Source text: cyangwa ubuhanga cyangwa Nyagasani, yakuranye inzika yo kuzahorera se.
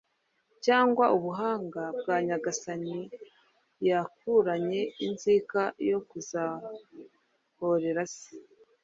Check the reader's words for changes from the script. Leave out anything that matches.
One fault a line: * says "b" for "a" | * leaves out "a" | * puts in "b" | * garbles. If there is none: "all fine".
* says "bwa" for "cyangwa"